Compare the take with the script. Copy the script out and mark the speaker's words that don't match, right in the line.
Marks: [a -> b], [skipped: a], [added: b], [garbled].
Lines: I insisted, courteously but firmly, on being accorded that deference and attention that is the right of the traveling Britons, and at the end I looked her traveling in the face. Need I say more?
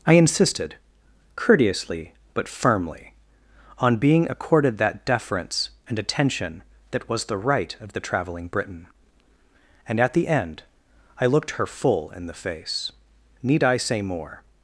I insisted, courteously but firmly, on being accorded that deference and attention that [is -> was] the right of the traveling [Britons, -> Briton] and at the end I looked her [traveling -> full] in the face. Need I say more?